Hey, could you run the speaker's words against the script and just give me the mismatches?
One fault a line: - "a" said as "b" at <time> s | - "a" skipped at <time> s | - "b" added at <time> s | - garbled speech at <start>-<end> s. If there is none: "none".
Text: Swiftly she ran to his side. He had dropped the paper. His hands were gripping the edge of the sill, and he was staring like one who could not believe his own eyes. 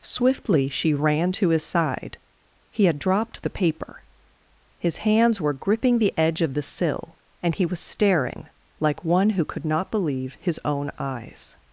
none